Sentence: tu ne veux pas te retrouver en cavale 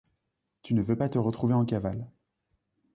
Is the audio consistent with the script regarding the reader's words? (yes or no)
yes